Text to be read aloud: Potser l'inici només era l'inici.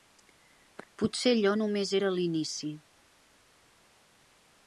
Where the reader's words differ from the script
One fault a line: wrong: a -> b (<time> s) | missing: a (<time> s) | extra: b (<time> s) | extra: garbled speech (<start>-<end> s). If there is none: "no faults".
wrong: l'inici -> allò (1.4 s)